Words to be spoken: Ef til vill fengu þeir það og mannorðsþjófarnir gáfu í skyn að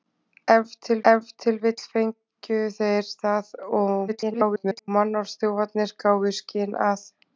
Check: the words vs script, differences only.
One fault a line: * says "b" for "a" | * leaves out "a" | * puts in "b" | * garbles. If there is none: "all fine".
* puts in "ef til"
* garbles